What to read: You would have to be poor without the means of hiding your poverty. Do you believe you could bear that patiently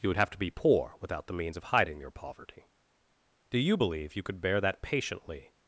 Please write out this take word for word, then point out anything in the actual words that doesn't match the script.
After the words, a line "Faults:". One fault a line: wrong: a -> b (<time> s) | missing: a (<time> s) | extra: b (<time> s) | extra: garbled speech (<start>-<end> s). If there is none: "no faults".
You would have to be poor without the means of hiding your poverty. Do you believe you could bear that patiently
Faults:
no faults